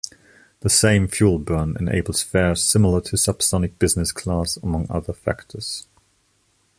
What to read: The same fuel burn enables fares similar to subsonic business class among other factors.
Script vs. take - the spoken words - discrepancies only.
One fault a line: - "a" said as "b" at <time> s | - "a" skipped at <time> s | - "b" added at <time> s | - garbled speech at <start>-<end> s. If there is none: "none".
none